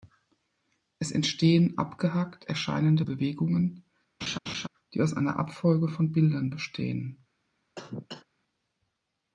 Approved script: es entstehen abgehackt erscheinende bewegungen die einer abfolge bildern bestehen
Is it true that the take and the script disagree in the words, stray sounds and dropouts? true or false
true